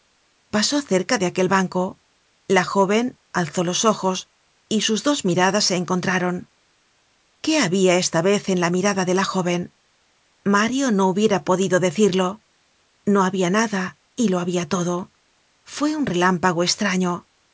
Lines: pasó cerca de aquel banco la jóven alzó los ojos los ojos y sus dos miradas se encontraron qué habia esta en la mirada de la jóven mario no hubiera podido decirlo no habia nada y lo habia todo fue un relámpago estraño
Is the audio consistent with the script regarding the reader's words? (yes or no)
no